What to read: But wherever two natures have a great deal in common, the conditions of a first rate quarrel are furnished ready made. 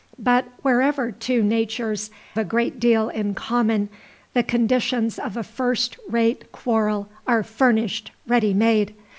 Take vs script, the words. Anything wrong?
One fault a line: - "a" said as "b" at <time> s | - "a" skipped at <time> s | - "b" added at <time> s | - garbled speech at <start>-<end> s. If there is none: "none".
- "have" skipped at 2.1 s